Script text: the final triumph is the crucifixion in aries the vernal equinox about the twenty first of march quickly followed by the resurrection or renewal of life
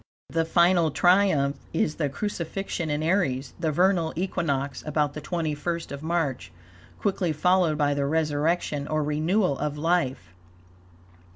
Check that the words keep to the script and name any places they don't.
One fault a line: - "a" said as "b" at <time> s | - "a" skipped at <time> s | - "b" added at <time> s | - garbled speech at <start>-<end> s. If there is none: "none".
none